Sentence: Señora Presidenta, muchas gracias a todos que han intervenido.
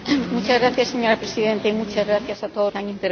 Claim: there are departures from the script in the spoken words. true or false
false